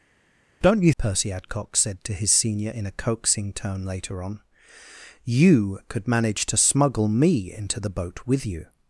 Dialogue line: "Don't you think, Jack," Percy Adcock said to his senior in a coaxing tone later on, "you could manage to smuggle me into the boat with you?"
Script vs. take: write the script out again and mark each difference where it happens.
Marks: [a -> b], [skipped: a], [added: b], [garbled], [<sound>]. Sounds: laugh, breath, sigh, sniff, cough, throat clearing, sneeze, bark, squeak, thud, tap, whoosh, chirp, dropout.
"Don't you [skipped: think, Jack,"] Percy Adcock said to his senior in a coaxing tone later on, "you could manage to smuggle me into the boat with you?"